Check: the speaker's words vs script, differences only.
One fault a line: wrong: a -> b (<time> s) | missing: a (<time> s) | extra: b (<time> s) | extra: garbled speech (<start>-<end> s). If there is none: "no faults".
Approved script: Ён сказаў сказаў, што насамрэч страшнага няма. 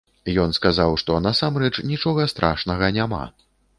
missing: сказаў (0.9 s)
extra: нічога (1.9 s)